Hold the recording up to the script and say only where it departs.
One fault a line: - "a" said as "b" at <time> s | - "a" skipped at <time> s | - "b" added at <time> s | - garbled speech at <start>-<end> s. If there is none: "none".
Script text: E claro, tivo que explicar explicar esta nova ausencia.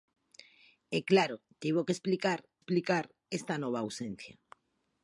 none